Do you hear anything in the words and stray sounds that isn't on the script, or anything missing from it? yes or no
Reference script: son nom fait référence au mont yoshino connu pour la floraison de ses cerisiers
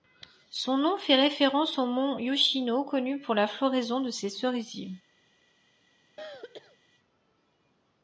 yes